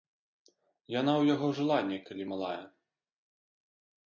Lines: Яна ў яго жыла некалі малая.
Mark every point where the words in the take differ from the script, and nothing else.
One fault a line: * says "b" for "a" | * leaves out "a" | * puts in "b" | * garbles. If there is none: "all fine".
all fine